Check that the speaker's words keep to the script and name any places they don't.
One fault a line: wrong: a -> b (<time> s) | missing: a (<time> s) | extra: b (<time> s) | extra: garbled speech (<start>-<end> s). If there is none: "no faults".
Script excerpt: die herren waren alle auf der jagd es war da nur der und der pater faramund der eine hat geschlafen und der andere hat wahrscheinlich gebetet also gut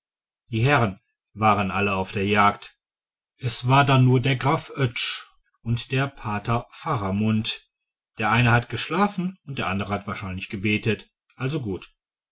extra: graf oetsch (4.3 s)